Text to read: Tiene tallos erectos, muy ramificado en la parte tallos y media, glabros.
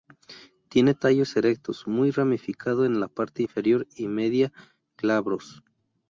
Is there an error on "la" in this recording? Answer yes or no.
no